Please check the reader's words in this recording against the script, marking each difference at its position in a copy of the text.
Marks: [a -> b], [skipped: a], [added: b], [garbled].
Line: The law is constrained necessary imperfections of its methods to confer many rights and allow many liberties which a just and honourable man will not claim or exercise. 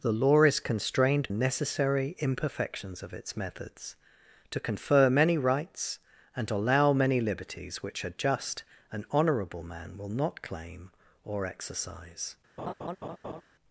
The law is constrained necessary imperfections of its methods to confer many rights and allow many liberties which a just and honourable man will not claim or exercise.